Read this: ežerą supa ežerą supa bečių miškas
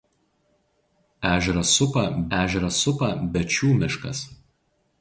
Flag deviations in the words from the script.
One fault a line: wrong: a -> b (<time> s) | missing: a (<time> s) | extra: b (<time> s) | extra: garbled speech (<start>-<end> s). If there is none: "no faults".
no faults